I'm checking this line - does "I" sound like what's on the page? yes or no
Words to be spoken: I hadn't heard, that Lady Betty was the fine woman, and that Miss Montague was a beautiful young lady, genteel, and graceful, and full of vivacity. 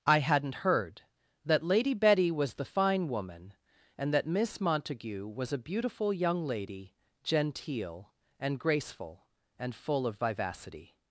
yes